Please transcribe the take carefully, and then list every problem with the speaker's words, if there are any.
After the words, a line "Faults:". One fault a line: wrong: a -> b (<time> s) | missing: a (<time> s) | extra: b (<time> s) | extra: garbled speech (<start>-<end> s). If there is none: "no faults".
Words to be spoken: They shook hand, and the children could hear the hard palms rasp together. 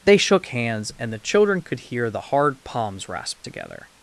They shook hands, and the children could hear the hard palms rasp together.
Faults:
wrong: hand -> hands (0.5 s)